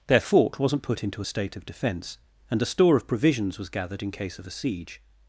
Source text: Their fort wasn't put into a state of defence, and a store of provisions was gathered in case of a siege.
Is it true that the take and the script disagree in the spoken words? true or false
false